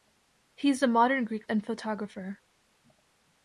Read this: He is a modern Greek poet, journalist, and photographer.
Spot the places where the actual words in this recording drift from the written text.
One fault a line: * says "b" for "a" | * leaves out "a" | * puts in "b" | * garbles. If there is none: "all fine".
* leaves out "poet journalist"